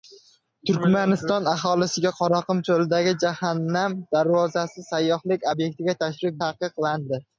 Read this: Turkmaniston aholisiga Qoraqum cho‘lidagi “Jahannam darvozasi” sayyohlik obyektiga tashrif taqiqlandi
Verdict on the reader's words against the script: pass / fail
pass